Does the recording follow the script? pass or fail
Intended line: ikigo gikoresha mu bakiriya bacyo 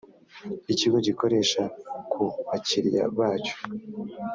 fail